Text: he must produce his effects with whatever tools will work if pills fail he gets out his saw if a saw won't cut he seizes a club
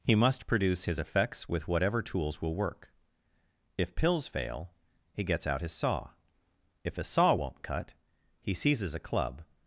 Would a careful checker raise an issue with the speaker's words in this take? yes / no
no